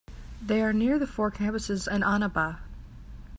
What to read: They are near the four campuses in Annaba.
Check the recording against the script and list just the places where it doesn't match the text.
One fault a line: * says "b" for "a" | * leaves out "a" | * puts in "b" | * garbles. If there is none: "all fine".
all fine